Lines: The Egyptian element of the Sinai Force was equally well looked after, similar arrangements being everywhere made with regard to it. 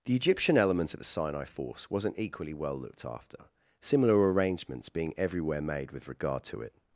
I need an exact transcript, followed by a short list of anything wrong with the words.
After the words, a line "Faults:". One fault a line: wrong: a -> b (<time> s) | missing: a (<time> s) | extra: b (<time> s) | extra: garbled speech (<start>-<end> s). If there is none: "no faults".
The Egyptian element of the Sinai Force wasn't equally well looked after, similar arrangements being everywhere made with regard to it.
Faults:
wrong: was -> wasn't (1.9 s)